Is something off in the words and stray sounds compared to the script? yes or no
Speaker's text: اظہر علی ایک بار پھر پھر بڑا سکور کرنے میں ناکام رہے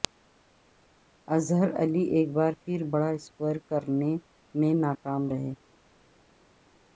yes